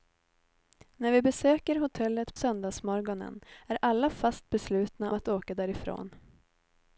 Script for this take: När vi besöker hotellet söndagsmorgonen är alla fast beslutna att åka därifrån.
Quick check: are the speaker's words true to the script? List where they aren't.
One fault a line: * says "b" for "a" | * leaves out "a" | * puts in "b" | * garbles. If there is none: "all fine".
all fine